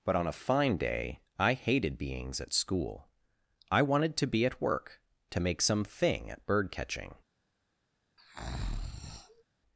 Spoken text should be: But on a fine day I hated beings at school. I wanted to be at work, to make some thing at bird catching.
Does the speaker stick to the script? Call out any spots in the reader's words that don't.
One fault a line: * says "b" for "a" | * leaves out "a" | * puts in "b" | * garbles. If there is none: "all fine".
all fine